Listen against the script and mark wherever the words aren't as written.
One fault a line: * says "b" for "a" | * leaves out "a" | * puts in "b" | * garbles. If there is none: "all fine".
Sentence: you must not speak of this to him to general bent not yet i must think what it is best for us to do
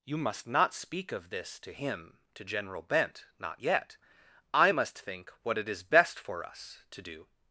all fine